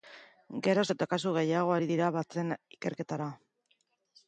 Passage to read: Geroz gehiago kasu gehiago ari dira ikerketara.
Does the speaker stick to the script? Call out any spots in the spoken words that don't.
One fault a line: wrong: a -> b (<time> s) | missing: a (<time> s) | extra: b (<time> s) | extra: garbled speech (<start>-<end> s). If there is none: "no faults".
wrong: gehiago -> eta (0.9 s)
extra: batzen (2.2 s)